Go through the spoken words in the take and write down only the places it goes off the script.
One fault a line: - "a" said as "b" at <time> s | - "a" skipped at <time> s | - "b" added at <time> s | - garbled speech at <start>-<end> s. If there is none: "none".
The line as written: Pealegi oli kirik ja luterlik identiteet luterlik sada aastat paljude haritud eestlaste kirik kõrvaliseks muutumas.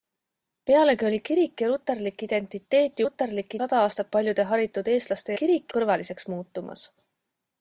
none